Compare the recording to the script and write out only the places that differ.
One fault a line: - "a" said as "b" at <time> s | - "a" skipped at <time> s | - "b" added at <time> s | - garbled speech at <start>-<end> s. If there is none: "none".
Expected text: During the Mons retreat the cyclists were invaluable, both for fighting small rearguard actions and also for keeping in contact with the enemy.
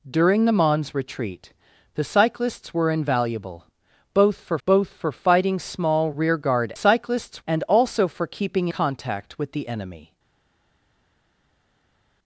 - "both for" added at 4.6 s
- "actions" said as "cyclists" at 6.7 s
- "in" skipped at 8.7 s